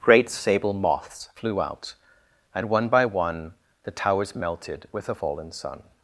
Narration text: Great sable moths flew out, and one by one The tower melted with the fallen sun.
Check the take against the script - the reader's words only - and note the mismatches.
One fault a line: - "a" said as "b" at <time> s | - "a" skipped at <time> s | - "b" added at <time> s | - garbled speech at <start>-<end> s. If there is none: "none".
- "tower" said as "towers" at 3.9 s